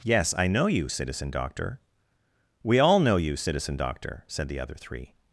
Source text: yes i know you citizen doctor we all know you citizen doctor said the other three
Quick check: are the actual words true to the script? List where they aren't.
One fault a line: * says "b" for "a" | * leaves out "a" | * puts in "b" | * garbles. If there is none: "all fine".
all fine